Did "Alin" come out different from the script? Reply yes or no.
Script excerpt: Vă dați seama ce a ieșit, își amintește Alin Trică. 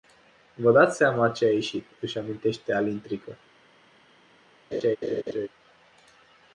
no